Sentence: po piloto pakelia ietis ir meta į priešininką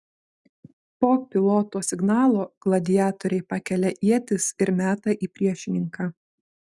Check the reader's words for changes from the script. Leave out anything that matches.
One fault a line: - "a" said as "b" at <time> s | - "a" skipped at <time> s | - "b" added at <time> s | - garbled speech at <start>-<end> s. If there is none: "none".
- "signalo gladiatoriai" added at 1.9 s